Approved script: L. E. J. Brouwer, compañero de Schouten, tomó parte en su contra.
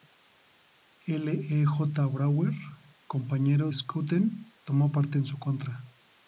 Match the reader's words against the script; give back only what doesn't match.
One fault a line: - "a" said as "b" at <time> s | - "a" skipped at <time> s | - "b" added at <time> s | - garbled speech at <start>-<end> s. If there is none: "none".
- "de" skipped at 3.7 s